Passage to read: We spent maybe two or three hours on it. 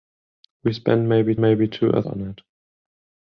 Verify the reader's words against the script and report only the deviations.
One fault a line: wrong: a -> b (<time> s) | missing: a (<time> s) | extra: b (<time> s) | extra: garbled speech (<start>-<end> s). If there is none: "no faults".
extra: maybe (1.4 s)
missing: three hours (2.0 s)